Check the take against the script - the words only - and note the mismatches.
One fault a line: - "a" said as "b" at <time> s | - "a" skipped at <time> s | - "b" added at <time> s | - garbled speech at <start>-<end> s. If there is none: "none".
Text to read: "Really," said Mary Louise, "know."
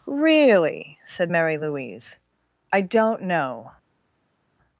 - "I don't" added at 2.7 s